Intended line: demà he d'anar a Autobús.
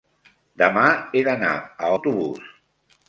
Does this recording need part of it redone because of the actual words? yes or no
no